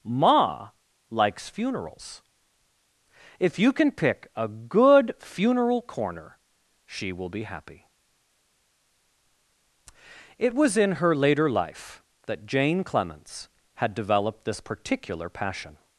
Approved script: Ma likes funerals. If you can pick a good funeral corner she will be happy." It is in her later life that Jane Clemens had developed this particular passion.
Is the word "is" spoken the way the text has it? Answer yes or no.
no